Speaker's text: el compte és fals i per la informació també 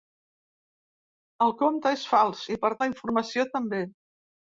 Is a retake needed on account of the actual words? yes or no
no